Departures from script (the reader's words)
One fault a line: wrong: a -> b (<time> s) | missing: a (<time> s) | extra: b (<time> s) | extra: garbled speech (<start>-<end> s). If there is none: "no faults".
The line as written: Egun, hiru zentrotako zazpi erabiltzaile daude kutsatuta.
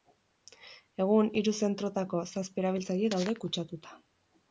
no faults